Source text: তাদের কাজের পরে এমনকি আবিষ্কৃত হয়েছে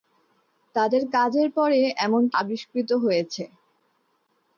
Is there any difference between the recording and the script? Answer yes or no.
no